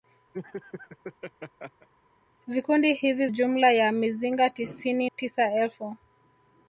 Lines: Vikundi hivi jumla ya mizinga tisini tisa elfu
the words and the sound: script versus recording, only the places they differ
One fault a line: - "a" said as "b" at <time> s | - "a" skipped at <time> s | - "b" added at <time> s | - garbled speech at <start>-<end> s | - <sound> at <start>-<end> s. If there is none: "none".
- laugh at 0.3-1.9 s